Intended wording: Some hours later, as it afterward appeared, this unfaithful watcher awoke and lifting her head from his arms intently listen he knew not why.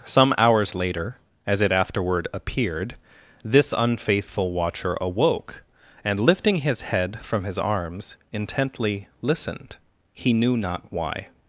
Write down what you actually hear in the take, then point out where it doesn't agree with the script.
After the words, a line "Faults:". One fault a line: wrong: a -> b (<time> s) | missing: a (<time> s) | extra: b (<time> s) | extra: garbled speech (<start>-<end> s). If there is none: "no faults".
Some hours later, as it afterward appeared, this unfaithful watcher awoke and lifting his head from his arms intently listened he knew not why.
Faults:
wrong: her -> his (6.6 s)
wrong: listen -> listened (9.2 s)